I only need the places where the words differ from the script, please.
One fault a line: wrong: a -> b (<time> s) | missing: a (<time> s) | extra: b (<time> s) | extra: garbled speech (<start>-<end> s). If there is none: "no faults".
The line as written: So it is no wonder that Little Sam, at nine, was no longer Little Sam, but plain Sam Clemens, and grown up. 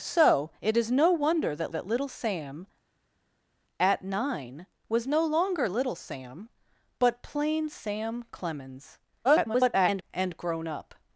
extra: that (1.7 s)
extra: garbled speech (9.2-10.0 s)